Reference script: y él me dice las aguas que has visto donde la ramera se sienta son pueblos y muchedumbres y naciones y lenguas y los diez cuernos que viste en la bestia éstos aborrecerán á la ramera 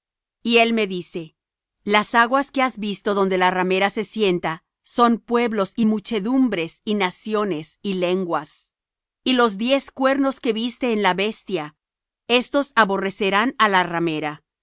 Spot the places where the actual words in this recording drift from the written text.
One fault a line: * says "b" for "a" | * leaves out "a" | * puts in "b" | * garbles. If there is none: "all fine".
all fine